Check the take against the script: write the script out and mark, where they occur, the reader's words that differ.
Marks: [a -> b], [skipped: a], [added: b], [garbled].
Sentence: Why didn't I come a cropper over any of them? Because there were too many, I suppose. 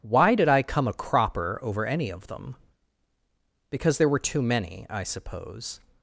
Why [didn't -> did] I come a cropper over any of them? Because there were too many, I suppose.